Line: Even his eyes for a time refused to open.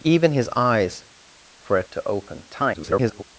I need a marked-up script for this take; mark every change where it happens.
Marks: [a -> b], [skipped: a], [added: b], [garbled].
Even his eyes for a [skipped: time refused] to open. [garbled]